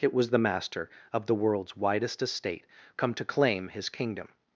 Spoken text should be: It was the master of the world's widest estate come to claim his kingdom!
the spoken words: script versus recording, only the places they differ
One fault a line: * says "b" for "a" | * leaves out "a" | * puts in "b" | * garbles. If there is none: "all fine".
all fine